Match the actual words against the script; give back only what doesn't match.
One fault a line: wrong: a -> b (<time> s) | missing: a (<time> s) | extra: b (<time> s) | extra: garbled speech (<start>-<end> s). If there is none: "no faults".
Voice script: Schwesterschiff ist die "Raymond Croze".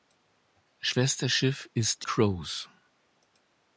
missing: die Raymond (2.1 s)